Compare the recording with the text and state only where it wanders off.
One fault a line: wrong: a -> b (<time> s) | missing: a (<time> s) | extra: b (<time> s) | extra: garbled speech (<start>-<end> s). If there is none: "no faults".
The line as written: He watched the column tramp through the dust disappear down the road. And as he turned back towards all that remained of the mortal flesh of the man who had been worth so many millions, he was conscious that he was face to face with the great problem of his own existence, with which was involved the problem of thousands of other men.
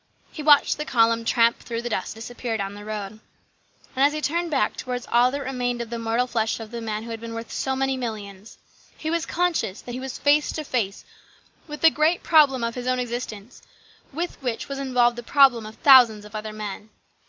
no faults